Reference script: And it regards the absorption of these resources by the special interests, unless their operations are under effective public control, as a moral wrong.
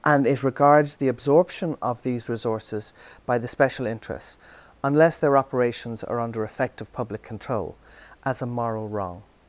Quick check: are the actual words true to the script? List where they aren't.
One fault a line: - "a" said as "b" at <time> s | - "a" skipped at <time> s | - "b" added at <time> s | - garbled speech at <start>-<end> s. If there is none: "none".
none